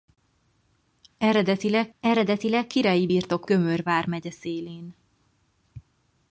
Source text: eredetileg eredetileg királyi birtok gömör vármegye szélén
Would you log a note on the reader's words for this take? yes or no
no